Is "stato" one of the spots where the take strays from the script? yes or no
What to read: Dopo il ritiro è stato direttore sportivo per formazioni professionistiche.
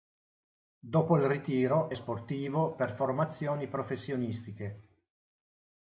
yes